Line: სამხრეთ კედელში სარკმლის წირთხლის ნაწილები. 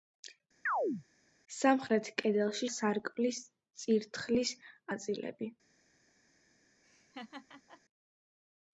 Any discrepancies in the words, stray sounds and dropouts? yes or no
yes